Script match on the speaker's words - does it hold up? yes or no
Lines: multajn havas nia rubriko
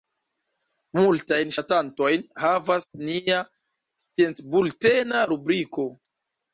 no